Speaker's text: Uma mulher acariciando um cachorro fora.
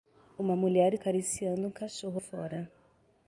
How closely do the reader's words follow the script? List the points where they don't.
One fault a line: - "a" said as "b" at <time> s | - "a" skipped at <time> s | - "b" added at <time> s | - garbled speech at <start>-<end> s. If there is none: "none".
none